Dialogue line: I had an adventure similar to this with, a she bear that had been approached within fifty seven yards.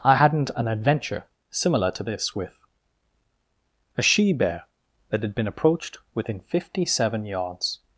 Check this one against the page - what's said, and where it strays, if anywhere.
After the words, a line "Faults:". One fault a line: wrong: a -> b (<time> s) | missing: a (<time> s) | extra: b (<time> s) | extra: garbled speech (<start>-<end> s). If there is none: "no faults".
I hadn't an adventure similar to this with, a she bear that had been approached within fifty seven yards.
Faults:
wrong: had -> hadn't (0.1 s)